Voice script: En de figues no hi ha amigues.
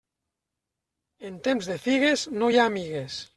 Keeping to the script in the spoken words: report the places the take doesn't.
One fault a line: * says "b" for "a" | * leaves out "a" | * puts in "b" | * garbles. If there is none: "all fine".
* puts in "temps"